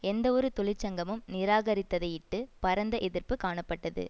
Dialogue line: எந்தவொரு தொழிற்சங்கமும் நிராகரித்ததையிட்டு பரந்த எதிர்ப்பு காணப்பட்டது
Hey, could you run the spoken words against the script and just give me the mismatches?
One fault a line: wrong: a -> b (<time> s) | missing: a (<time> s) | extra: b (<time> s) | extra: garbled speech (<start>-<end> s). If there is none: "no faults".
no faults